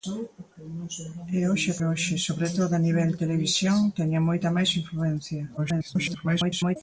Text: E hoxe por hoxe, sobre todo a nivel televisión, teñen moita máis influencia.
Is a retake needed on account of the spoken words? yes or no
yes